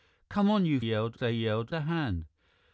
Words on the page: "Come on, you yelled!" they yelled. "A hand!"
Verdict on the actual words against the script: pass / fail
pass